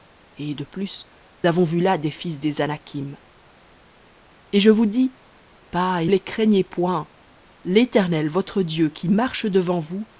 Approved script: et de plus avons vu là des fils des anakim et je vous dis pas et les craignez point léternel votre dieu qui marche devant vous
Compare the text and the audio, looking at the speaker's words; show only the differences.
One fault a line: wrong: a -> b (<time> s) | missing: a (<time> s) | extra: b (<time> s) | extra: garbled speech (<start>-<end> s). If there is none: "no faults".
no faults